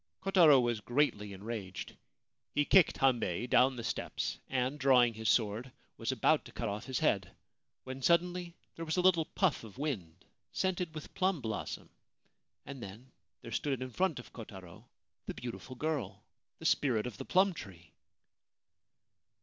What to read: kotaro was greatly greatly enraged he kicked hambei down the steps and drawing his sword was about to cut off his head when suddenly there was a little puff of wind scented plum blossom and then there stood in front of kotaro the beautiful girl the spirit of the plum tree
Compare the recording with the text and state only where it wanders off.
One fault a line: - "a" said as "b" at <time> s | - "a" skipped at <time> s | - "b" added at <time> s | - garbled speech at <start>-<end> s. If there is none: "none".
- "greatly" skipped at 1.3 s
- "with" added at 11.0 s